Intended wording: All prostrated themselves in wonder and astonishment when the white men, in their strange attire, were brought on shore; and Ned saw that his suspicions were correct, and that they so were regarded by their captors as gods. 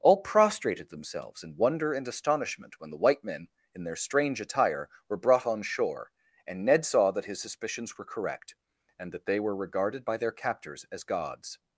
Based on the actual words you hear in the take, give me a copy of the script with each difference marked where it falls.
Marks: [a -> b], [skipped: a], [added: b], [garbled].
All prostrated themselves in wonder and astonishment when the white men, in their strange attire, were brought on shore; and Ned saw that his suspicions were correct, and that they [skipped: so] were regarded by their captors as gods.